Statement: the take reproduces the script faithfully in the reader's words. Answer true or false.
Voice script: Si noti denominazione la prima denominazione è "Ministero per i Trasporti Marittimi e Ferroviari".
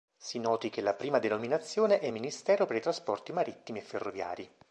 false